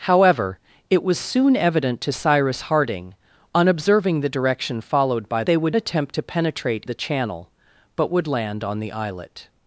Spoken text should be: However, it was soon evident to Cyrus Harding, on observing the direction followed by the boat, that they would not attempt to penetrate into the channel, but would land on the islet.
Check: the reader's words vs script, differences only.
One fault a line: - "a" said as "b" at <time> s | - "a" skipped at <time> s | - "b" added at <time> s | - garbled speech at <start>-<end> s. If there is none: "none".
- "the boat that" skipped at 5.4 s
- "not" skipped at 5.8 s
- "into" skipped at 6.8 s